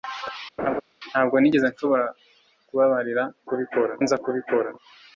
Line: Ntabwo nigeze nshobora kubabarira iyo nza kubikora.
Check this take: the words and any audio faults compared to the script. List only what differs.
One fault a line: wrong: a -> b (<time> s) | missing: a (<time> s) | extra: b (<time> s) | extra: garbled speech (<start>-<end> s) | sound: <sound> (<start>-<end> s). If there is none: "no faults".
sound: laugh (0.6-0.8 s)
wrong: iyo -> kubikora (3.5 s)